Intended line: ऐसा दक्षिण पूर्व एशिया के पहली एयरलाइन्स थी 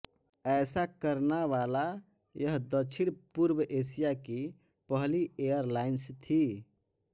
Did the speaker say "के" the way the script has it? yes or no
no